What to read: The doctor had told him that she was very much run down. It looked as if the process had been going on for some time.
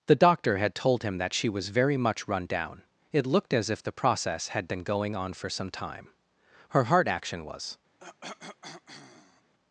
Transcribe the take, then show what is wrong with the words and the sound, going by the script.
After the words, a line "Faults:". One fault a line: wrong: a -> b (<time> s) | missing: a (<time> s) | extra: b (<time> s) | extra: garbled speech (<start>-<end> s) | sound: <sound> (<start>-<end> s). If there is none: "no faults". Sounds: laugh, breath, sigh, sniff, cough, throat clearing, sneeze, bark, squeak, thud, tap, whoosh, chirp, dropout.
The doctor had told him that she was very much run down. It looked as if the process had been going on for some time. Her heart action was
Faults:
extra: Her heart action was (6.7 s)
sound: cough (8.0-9.5 s)